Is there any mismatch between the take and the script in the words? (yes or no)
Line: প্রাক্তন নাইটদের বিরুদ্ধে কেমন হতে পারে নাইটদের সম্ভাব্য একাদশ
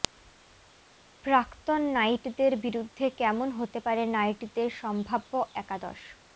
no